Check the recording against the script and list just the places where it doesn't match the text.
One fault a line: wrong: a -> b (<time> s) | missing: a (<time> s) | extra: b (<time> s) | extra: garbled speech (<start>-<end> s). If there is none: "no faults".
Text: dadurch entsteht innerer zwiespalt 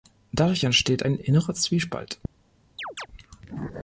extra: ein (1.0 s)